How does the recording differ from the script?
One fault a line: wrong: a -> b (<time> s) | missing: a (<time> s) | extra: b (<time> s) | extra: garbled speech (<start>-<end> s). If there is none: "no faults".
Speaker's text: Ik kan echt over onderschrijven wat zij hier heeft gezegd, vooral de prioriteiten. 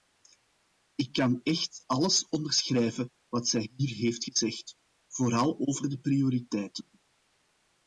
wrong: over -> alles (1.9 s)
extra: over (5.6 s)